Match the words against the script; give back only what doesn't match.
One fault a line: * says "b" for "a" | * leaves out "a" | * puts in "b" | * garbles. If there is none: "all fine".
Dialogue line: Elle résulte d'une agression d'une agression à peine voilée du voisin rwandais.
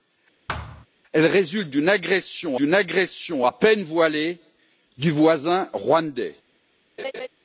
all fine